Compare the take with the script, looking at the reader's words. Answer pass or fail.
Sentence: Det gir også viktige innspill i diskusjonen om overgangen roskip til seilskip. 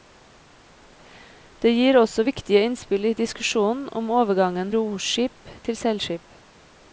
pass